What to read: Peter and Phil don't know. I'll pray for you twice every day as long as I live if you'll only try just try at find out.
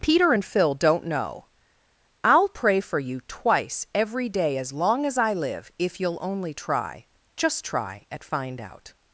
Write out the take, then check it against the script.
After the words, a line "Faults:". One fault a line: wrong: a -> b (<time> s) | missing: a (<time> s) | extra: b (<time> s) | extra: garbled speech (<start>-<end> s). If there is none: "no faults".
Peter and Phil don't know. I'll pray for you twice every day as long as I live if you'll only try just try at find out.
Faults:
no faults